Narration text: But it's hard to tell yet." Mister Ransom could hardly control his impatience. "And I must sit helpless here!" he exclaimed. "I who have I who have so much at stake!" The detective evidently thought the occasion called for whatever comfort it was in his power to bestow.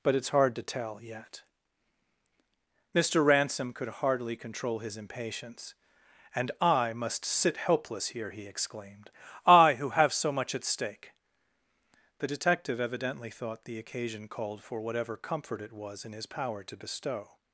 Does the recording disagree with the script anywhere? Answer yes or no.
yes